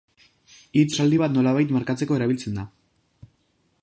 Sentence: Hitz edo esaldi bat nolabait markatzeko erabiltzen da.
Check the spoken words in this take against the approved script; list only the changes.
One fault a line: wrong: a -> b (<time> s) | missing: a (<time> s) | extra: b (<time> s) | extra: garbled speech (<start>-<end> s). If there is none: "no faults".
missing: edo (0.9 s)